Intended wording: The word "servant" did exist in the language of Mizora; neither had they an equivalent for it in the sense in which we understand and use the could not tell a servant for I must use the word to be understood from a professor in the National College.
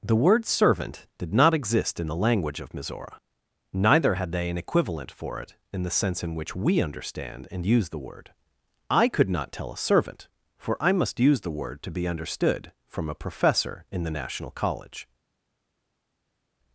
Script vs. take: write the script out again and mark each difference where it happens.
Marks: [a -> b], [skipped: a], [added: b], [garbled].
The word "servant" did [added: not] exist in the language of Mizora; neither had they an equivalent for it in the sense in which we understand and use the [added: word I] could not tell a servant for I must use the word to be understood from a professor in the National College.